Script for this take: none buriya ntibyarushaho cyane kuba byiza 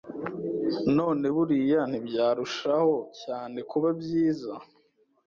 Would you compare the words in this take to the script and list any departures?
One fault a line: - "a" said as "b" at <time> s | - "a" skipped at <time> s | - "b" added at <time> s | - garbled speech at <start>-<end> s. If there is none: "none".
none